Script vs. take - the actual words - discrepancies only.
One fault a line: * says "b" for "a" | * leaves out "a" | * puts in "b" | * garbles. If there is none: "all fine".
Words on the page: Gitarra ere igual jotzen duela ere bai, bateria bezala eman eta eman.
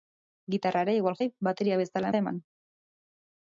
* leaves out "jotzen duela ere"
* leaves out "eman"